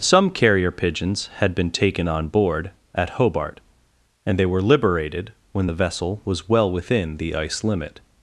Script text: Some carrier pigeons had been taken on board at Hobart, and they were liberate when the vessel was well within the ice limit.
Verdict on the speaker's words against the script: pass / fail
fail